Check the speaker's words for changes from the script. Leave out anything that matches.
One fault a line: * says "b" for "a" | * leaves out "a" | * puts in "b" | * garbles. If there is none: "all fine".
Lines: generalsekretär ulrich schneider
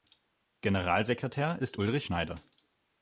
* puts in "ist"